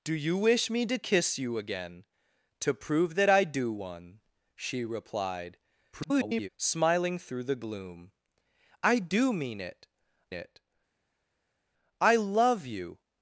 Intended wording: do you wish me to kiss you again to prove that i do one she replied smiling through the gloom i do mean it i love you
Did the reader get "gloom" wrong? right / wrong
right